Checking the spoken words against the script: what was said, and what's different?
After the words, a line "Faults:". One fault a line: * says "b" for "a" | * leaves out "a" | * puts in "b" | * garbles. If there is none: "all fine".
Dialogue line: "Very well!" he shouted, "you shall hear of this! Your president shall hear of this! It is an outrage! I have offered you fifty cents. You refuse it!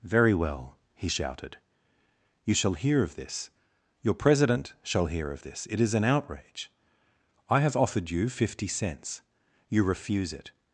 "Very well!" he shouted, "you shall hear of this! Your president shall hear of this! It is an outrage! I have offered you fifty cents. You refuse it!
Faults:
all fine